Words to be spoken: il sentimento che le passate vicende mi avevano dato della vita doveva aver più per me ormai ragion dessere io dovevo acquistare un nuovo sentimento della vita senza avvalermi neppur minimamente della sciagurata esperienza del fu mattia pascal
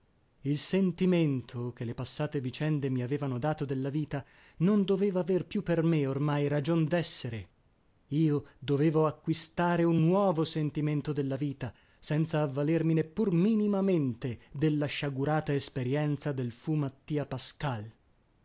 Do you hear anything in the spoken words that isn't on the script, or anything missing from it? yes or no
yes